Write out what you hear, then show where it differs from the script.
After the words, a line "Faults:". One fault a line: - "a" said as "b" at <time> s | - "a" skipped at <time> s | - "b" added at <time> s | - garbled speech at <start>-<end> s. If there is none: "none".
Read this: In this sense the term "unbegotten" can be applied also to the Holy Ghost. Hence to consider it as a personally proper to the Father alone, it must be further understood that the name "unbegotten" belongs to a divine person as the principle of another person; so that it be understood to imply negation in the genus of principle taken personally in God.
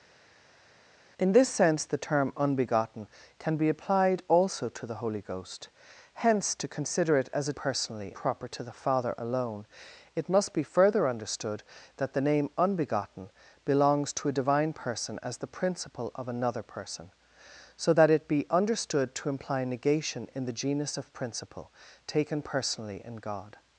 In this sense the term "unbegotten" can be applied also to the Holy Ghost. Hence to consider it as a personally proper to the Father alone, it must be further understood that the name "unbegotten" belongs to a divine person as the principle of another person; so that it be understood to imply negation in the genus of principle taken personally in God.
Faults:
none